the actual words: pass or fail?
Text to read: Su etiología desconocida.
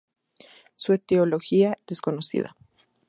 pass